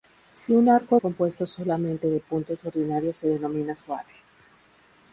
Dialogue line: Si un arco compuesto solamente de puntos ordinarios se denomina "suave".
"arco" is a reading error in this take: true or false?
false